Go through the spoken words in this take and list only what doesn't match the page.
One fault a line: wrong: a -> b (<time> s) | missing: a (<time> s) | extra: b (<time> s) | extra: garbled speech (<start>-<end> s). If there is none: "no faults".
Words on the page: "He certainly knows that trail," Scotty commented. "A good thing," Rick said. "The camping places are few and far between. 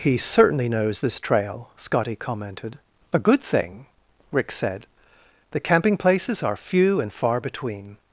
wrong: that -> this (1.0 s)